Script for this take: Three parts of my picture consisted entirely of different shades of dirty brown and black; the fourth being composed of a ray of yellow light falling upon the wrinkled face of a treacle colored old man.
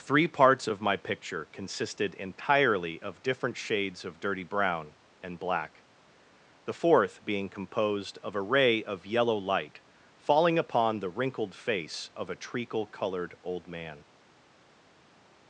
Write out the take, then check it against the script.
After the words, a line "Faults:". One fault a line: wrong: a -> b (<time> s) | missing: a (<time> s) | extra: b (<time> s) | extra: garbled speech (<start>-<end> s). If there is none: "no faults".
Three parts of my picture consisted entirely of different shades of dirty brown and black; the fourth being composed of a ray of yellow light falling upon the wrinkled face of a treacle colored old man.
Faults:
no faults